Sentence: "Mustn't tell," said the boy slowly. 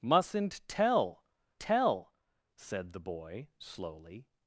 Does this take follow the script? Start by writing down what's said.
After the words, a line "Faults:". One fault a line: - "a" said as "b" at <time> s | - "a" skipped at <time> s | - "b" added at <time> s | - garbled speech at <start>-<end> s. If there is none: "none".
"Mustn't tell tell," said the boy slowly.
Faults:
- "tell" added at 1.6 s